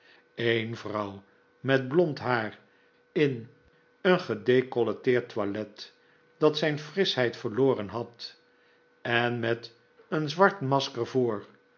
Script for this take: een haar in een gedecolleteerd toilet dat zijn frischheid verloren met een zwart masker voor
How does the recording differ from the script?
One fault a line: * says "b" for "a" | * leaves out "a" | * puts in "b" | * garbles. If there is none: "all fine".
* puts in "vrouw met blond"
* puts in "had en"